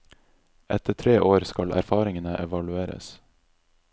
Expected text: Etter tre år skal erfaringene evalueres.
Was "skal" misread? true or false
false